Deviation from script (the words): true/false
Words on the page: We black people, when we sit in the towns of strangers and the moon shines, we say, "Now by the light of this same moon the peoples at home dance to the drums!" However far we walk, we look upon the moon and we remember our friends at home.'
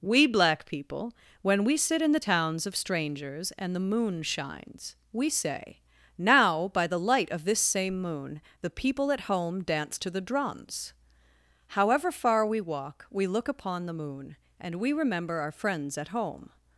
true